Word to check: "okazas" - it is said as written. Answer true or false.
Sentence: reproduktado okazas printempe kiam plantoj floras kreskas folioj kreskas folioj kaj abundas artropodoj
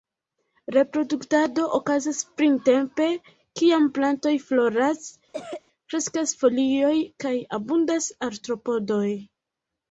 true